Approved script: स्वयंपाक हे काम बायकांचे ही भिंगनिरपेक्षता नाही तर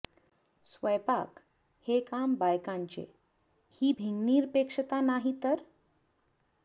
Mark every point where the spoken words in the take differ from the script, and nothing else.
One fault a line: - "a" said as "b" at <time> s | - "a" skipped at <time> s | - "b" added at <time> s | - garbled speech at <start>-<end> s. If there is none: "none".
none